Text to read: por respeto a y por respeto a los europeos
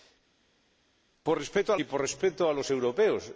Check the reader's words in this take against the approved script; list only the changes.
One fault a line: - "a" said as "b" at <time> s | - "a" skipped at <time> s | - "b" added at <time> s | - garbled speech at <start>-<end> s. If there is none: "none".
none